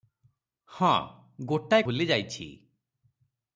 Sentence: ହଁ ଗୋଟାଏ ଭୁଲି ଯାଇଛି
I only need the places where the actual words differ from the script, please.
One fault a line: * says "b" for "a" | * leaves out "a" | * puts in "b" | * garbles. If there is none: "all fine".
all fine